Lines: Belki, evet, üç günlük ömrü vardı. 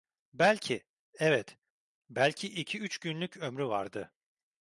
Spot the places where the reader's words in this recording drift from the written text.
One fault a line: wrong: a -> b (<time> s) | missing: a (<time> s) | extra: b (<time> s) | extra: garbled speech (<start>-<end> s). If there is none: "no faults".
extra: belki iki (2.1 s)